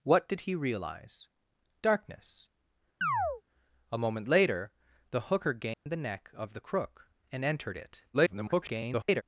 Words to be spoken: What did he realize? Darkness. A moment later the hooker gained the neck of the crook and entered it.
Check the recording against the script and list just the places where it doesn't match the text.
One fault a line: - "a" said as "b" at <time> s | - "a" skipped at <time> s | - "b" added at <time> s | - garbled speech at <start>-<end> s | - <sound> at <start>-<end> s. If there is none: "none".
- chirp at 3.0-3.4 s
- dropout at 5.7-5.9 s
- garbled speech at 8.1-9.2 s